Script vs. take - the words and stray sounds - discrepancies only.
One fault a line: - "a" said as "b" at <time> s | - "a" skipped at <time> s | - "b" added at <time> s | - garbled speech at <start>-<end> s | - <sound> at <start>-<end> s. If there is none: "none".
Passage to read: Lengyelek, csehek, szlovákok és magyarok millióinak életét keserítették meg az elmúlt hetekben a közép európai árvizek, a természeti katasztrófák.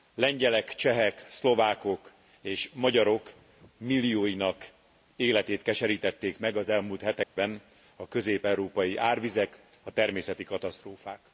- dropout at 7.2-7.4 s